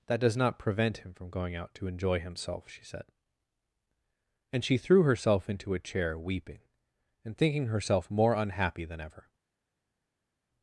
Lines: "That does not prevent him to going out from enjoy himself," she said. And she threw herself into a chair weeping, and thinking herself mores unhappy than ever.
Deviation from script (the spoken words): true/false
true